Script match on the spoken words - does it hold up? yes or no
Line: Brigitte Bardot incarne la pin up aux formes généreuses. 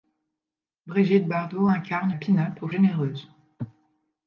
no